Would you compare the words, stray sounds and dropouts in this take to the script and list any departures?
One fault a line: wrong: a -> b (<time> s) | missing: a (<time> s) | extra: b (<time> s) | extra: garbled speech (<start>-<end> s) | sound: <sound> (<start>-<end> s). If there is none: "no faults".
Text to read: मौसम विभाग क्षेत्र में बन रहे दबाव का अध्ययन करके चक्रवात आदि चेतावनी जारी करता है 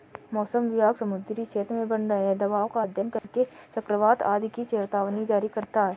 extra: समुद्री (0.9 s)
sound: dropout (3.2-3.2 s)
extra: की (4.5 s)